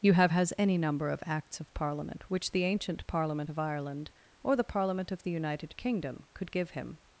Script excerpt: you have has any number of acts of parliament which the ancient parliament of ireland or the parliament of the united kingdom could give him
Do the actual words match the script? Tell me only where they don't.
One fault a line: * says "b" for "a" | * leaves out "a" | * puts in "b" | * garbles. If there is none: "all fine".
all fine